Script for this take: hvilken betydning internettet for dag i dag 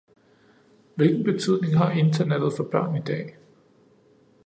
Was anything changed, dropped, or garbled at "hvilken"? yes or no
no